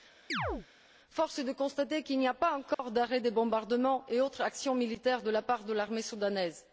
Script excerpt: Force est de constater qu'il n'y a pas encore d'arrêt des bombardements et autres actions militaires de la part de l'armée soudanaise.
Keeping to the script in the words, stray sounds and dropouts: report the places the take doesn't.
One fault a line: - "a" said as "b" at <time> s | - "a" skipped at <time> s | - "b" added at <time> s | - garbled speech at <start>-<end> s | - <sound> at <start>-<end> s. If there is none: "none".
- chirp at 0.3-0.7 s
- dropout at 2.7-2.8 s